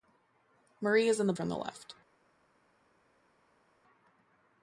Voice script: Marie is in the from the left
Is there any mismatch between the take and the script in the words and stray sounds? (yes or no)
no